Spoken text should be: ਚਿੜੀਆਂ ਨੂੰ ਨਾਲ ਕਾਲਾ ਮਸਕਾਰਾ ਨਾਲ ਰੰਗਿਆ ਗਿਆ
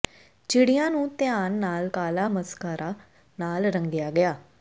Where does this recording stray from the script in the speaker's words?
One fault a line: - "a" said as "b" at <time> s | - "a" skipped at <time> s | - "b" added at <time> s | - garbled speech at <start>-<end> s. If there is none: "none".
- "ਧਿਆਨ" added at 1.2 s